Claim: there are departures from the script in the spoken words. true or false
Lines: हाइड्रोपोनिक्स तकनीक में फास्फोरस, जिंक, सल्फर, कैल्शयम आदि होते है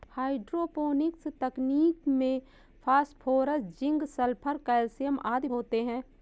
false